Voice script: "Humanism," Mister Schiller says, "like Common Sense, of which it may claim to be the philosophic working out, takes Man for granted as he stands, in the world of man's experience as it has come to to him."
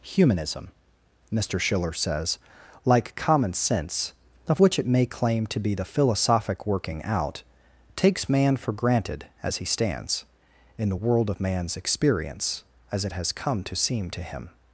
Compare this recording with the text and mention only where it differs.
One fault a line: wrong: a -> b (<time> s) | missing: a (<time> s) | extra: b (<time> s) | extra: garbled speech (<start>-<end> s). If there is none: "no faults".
extra: seem (13.7 s)